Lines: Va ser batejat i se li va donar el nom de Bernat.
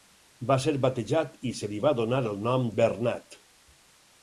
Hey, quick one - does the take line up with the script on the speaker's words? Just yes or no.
no